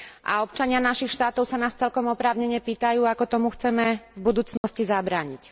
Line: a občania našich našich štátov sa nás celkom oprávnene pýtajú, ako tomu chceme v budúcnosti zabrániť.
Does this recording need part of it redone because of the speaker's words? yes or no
yes